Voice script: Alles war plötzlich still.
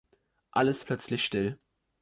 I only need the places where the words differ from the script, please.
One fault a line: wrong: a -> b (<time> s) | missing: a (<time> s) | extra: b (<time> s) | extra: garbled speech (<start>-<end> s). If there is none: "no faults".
missing: war (0.8 s)